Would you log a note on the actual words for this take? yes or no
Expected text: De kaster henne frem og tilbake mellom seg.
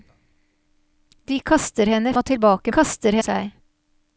yes